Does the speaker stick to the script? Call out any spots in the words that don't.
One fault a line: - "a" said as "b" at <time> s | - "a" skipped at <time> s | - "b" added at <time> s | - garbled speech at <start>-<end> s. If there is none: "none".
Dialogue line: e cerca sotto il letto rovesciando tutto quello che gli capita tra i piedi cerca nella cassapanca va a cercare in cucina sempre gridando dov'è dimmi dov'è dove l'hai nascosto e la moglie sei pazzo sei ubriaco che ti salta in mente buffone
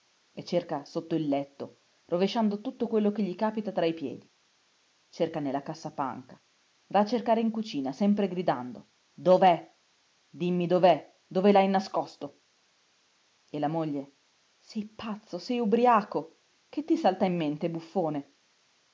none